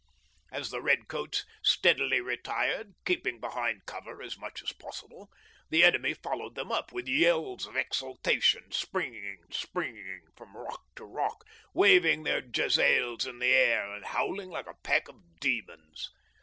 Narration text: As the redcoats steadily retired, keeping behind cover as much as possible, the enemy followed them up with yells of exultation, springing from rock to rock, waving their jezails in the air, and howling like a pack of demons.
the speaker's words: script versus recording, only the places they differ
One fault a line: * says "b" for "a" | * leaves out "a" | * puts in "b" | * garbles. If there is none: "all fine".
* puts in "springing"